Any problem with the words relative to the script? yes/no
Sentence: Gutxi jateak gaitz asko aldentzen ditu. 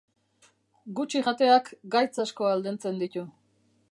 no